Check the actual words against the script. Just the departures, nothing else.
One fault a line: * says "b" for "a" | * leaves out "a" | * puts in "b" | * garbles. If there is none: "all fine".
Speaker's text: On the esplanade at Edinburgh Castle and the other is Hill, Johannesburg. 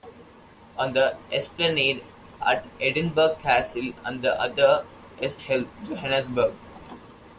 all fine